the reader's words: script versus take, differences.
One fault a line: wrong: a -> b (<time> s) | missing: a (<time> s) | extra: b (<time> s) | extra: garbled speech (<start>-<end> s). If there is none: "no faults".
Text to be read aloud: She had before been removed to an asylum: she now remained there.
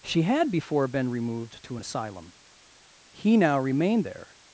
wrong: she -> he (3.1 s)